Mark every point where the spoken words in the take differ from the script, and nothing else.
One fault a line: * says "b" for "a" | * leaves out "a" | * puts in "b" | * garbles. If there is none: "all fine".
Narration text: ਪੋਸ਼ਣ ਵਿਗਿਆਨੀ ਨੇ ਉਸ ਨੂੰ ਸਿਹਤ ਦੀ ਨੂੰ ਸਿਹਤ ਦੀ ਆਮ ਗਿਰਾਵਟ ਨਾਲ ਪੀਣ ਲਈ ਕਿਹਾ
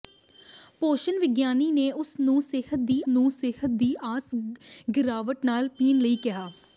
all fine